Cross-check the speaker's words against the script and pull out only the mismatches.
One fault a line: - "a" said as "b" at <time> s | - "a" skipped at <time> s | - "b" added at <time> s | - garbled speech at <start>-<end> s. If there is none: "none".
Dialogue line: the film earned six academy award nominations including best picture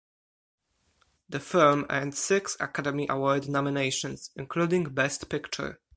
none